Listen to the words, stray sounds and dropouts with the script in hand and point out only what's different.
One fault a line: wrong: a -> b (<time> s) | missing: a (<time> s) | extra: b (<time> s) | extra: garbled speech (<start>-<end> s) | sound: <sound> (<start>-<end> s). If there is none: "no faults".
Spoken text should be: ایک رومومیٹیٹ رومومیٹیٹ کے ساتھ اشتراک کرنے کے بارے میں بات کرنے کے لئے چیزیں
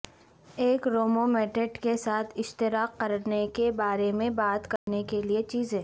missing: رومومیٹیٹ (1.8 s)
sound: dropout (4.8-4.9 s)